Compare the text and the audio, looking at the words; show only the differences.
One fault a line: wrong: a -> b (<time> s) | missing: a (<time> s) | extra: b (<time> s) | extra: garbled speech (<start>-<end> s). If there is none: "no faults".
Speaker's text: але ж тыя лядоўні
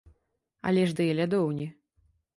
no faults